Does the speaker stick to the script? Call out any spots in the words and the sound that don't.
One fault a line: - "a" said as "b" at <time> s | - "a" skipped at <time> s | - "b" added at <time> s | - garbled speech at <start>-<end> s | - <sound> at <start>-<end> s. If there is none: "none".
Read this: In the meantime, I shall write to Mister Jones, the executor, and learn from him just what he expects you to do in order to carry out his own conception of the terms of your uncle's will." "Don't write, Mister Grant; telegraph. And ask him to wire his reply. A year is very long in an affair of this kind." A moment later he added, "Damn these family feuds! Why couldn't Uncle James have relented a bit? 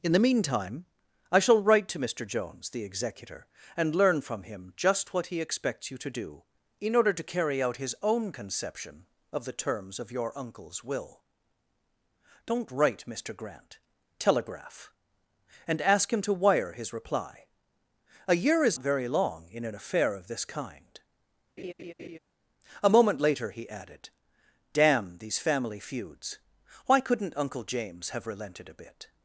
- laugh at 21.6-22.2 s